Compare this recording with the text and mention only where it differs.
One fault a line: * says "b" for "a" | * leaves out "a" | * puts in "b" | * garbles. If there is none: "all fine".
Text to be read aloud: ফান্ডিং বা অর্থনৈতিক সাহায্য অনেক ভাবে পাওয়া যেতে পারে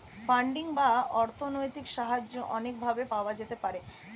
all fine